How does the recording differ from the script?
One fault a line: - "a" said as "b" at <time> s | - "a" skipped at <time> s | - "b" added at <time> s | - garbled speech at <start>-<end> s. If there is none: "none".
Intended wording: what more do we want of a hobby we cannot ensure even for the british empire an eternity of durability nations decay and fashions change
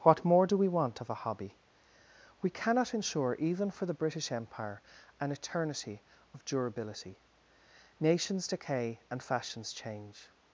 none